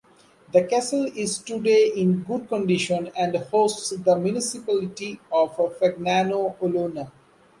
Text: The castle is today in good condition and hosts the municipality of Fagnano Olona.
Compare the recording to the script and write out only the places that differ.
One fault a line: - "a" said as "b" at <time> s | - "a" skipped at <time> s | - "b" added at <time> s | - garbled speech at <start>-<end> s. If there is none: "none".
none